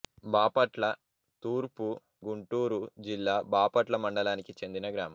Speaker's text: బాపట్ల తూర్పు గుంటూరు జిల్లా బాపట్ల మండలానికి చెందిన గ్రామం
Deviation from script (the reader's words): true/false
false